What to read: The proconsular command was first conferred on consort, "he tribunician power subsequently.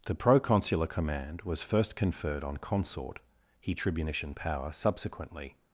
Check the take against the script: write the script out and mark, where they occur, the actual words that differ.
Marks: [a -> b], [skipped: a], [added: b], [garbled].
The proconsular command was first conferred on consort, "he tribunician power subsequently.